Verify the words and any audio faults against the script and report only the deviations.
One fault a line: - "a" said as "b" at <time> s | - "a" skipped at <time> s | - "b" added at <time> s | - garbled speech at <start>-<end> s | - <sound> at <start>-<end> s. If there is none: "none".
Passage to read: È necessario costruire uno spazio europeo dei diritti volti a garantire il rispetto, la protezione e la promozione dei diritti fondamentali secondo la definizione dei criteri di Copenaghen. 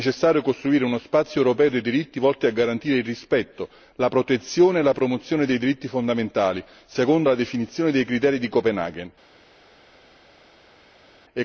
none